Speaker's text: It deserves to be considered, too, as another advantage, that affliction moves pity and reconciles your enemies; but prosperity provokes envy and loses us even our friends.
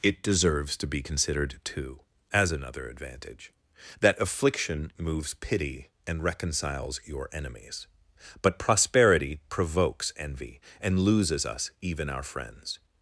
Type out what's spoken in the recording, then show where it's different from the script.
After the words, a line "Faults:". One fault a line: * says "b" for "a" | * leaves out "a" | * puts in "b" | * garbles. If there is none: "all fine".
It deserves to be considered, too, as another advantage, that affliction moves pity and reconciles your enemies; but prosperity provokes envy and loses us even our friends.
Faults:
all fine